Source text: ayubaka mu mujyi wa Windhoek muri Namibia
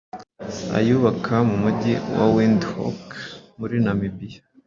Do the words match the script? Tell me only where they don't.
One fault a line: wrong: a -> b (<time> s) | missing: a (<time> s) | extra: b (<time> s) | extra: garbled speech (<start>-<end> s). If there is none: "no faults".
no faults